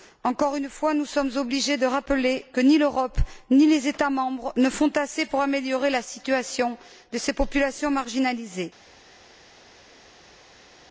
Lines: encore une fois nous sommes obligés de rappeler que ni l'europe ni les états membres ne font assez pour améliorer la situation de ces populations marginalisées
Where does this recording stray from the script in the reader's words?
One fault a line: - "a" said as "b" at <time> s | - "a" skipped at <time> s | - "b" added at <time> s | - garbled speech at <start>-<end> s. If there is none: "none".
none